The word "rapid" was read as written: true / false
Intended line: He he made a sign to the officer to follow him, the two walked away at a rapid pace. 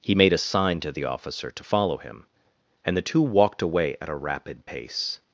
true